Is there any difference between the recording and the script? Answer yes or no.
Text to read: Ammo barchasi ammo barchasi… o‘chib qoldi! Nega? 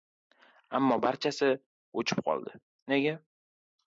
yes